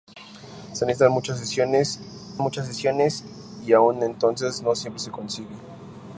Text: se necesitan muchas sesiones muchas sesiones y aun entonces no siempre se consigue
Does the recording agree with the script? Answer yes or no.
yes